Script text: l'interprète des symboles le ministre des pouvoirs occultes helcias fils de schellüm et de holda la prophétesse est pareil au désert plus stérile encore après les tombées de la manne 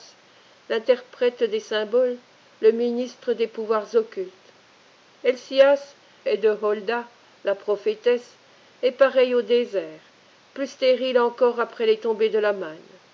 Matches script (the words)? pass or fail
fail